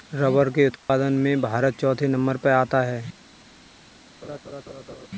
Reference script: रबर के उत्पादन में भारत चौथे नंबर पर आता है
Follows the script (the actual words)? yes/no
yes